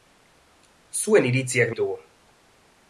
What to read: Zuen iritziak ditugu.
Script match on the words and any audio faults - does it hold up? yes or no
yes